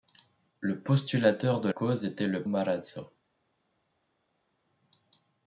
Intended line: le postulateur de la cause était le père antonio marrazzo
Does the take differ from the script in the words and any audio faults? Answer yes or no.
yes